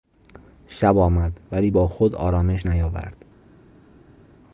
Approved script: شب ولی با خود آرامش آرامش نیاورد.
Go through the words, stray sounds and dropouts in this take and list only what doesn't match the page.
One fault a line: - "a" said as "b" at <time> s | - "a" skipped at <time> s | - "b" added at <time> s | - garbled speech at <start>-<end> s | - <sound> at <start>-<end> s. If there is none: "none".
- "آمد" added at 1.0 s
- "آرامش" skipped at 2.7 s